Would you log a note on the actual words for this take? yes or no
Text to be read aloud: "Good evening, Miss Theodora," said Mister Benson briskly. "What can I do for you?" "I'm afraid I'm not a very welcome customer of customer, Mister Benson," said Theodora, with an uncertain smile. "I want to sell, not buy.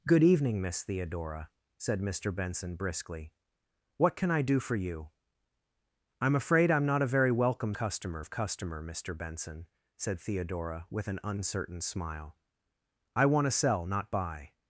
no